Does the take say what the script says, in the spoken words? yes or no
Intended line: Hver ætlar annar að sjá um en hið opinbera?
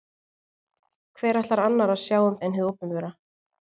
yes